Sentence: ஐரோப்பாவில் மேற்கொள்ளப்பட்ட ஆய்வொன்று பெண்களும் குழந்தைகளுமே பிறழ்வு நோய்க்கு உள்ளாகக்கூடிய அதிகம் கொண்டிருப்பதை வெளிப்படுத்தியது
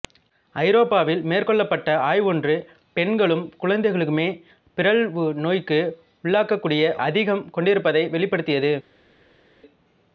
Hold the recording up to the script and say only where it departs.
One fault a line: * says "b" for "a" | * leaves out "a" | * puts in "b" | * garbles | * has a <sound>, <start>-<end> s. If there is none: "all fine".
all fine